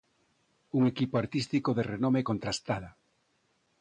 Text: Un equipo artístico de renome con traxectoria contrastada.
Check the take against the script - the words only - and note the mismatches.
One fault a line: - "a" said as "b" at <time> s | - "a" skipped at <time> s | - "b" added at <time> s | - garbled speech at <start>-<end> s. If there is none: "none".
- "con traxectoria" skipped at 2.2 s